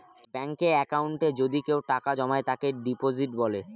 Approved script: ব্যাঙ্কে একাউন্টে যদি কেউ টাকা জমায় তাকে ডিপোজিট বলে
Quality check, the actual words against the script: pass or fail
pass